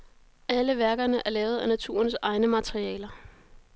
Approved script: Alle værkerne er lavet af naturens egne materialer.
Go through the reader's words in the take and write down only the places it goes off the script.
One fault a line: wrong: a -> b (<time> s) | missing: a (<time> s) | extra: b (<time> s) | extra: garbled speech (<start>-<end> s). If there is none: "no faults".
no faults